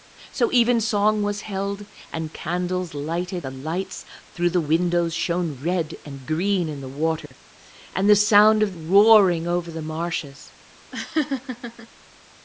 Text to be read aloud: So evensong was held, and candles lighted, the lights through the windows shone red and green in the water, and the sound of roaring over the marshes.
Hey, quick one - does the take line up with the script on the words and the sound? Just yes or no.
no